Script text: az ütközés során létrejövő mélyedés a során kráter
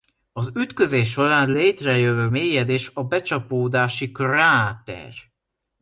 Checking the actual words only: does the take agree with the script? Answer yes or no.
no